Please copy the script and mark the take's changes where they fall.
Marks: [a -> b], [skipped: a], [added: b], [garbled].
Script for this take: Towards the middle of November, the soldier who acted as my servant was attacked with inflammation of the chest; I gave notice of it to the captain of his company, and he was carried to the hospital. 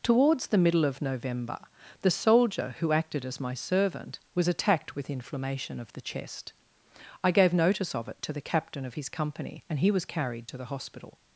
Towards the middle of November, the soldier who acted as my servant was attacked with inflammation of the chest; I gave notice of it to the captain of his company, and he was carried to the hospital.